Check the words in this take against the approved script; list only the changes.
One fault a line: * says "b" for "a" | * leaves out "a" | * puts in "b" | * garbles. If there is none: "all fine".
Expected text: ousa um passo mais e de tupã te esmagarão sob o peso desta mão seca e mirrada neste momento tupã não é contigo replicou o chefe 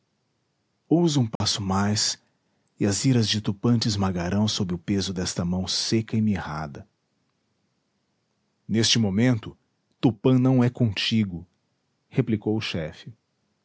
* puts in "as iras"